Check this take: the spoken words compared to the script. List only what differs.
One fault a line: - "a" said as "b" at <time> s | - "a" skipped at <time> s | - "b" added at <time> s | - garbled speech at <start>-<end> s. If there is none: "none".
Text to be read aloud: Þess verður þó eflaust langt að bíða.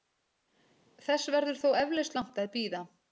none